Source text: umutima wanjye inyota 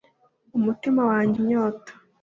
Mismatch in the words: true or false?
false